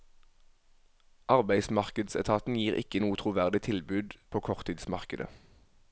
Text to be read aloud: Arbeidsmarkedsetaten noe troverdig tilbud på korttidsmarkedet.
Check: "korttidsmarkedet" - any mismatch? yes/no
no